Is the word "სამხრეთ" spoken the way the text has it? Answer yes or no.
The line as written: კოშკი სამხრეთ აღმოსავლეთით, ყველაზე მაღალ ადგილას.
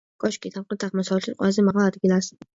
yes